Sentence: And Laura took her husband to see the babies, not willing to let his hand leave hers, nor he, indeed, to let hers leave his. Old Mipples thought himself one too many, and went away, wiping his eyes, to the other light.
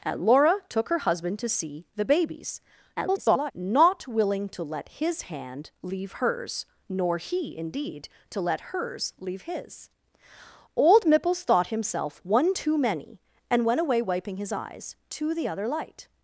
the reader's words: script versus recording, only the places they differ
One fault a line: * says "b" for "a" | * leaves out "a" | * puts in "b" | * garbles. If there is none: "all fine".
* garbles